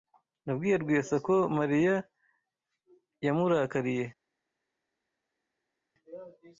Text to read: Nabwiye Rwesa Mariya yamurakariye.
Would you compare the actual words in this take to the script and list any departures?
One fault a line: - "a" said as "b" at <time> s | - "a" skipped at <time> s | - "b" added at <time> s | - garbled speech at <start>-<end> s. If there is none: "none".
- "ko" added at 1.2 s